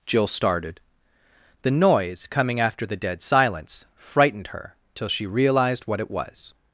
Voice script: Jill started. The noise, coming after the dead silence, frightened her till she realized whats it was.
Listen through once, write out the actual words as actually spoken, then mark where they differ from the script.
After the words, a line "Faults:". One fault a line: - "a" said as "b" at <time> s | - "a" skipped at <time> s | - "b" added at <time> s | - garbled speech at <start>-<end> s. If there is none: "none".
Jill started. The noise, coming after the dead silence, frightened her till she realized what it was.
Faults:
- "whats" said as "what" at 5.9 s